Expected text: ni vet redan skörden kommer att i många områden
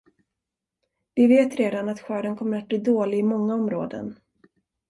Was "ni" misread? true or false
true